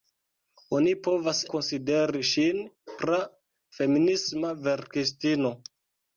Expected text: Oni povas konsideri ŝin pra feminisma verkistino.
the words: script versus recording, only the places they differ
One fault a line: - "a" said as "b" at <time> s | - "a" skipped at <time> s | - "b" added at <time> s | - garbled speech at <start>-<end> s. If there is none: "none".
none